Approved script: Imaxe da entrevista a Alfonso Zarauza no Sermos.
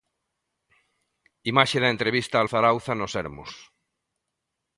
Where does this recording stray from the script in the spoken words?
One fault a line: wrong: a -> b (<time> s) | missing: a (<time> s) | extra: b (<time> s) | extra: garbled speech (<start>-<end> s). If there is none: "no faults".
missing: Alfonso (2.4 s)